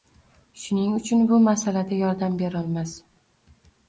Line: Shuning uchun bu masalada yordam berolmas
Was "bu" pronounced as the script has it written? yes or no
yes